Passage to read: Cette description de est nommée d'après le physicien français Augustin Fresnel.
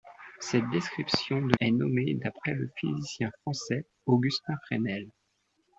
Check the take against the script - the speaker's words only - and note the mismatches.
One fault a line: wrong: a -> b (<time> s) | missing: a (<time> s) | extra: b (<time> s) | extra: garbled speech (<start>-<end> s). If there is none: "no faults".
no faults